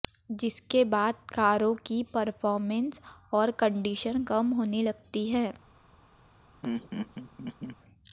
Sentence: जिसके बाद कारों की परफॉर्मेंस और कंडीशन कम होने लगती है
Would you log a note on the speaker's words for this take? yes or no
no